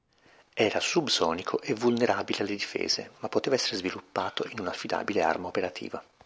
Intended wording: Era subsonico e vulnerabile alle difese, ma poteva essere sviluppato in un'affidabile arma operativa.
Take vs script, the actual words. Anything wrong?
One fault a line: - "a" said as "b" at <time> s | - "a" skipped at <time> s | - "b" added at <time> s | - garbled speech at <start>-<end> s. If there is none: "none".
none